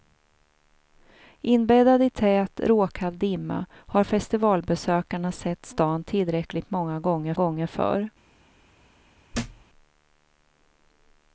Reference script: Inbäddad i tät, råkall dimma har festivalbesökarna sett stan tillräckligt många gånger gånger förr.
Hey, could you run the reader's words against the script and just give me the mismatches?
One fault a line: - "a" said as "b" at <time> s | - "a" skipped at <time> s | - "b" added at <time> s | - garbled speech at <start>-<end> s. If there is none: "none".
none